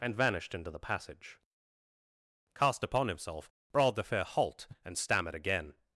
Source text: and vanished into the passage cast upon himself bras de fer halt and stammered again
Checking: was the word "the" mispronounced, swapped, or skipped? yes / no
no